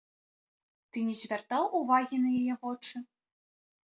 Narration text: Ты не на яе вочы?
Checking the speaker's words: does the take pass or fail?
fail